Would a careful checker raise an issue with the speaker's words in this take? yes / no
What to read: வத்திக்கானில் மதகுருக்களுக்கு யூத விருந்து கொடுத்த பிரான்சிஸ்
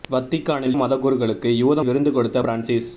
no